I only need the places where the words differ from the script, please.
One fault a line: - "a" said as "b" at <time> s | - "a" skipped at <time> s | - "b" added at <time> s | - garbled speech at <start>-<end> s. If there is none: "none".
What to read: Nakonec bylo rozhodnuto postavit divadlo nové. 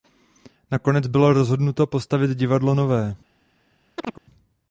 none